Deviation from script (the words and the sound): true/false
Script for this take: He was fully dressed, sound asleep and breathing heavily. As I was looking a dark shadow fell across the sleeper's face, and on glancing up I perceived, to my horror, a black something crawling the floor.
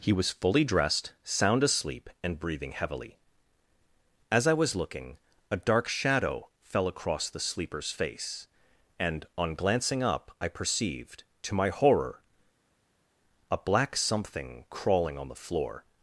true